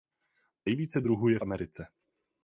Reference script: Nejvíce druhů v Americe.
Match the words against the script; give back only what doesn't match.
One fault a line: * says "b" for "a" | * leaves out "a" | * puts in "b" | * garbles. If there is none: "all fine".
* puts in "je"